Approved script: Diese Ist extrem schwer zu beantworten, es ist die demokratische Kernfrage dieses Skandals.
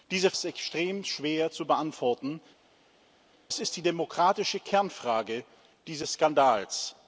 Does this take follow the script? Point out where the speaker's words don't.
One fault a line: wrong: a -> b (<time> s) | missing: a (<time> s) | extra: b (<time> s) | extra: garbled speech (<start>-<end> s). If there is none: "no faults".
no faults